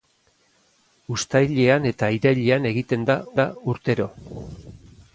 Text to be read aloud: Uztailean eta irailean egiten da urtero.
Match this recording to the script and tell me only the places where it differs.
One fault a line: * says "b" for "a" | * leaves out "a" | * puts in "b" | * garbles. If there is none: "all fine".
* puts in "da"